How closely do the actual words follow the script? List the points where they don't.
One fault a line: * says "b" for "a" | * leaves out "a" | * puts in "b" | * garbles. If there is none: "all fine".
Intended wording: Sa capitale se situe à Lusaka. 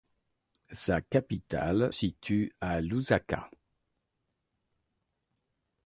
* leaves out "se"